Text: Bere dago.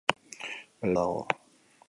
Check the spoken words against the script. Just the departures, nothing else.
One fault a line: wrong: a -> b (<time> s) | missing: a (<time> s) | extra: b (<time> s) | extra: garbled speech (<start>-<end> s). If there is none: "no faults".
no faults